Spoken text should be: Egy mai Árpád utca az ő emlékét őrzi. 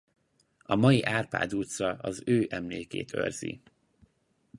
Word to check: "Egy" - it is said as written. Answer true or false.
false